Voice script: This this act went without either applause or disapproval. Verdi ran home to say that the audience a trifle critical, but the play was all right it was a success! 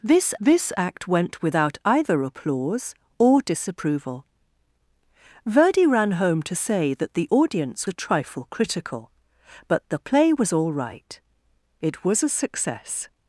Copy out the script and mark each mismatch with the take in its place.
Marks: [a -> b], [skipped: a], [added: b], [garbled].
This this act went without either applause or disapproval. Verdi ran home to say that the audience a trifle critical, but the play was all right it was a success!